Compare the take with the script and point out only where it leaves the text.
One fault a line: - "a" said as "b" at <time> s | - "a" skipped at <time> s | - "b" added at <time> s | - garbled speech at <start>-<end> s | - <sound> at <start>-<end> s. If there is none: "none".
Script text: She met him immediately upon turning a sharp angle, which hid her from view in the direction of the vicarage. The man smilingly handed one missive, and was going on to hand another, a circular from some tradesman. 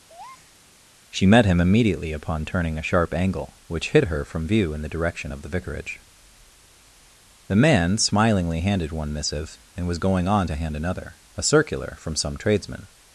- breath at 0.1-0.6 s